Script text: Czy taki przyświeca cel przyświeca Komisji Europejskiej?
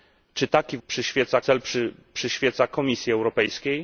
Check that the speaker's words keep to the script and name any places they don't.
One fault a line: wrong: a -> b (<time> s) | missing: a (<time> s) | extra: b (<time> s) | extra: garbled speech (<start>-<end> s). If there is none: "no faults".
no faults